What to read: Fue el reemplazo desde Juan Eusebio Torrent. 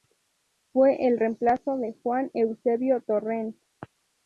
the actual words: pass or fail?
fail